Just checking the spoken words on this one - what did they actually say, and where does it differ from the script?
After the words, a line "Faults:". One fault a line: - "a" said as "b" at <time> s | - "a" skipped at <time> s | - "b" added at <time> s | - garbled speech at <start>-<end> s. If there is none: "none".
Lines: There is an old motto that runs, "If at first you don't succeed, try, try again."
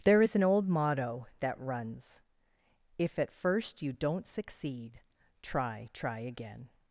There is an old motto that runs, "If at first you don't succeed, try, try again."
Faults:
none